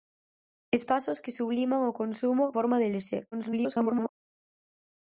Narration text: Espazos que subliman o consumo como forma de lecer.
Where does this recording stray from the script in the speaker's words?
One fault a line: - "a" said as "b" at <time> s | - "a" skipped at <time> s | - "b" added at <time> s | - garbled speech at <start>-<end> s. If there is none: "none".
- "como" skipped at 2.5 s
- garbled speech at 3.3-4.1 s